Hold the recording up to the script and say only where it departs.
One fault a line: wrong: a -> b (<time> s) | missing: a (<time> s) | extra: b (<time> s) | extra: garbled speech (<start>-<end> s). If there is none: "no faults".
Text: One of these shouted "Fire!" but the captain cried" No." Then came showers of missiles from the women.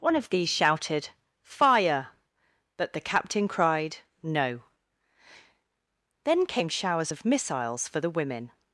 wrong: from -> for (7.9 s)